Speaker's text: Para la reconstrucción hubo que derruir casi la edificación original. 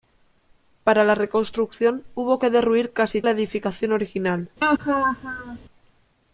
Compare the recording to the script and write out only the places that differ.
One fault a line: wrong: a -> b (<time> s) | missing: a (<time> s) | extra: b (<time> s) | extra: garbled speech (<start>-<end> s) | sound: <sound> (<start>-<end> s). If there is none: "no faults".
sound: laugh (4.6-5.6 s)